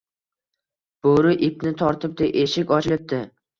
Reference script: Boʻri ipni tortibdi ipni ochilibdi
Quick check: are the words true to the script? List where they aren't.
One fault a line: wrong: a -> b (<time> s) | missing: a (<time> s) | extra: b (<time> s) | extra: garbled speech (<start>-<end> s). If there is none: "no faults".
wrong: ipni -> eshik (2.5 s)